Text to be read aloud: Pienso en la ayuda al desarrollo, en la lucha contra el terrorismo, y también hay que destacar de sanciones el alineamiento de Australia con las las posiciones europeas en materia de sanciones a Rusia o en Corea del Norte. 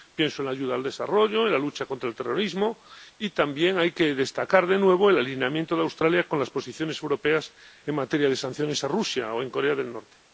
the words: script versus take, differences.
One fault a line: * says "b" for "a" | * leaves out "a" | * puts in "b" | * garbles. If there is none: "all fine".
* says "nuevo" for "sanciones"
* leaves out "las"